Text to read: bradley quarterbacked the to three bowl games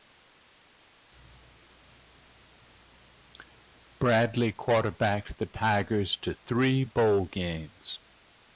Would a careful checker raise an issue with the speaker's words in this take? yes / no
yes